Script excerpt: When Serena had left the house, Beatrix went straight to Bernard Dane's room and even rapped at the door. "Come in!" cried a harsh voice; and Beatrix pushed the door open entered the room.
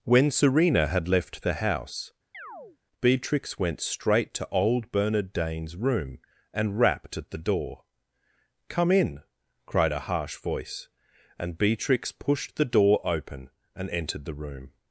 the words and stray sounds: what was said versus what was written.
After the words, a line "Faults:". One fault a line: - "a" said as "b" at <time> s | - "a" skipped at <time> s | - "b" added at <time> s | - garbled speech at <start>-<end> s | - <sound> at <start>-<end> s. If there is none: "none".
When Serena had left the house, Beatrix went straight to old Bernard Dane's room and rapped at the door. "Come in!" cried a harsh voice; and Beatrix pushed the door open and entered the room.
Faults:
- chirp at 2.3-2.8 s
- "old" added at 4.5 s
- "even" skipped at 6.8 s
- "and" added at 13.7 s